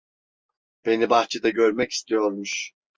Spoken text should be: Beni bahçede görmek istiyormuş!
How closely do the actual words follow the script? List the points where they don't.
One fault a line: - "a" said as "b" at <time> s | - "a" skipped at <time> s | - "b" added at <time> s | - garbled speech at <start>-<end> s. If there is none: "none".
none